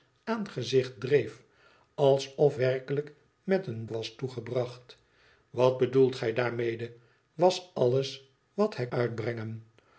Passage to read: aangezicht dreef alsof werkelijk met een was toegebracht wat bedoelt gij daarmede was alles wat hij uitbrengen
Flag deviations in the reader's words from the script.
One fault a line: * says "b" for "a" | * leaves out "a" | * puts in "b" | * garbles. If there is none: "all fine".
all fine